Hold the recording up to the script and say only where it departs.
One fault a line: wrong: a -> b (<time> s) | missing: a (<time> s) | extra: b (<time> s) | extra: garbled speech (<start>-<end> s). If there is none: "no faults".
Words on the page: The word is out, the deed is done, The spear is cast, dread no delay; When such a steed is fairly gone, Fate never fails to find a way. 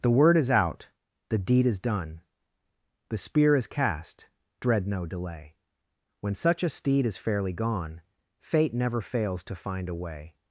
no faults